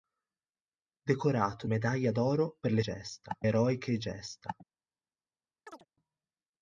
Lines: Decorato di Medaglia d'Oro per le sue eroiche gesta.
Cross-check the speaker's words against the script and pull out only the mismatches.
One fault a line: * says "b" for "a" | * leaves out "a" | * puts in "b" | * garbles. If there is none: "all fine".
* leaves out "di"
* says "gesta" for "sue"